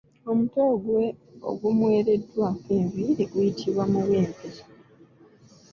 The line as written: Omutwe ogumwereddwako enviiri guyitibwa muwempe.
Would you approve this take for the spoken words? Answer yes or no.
yes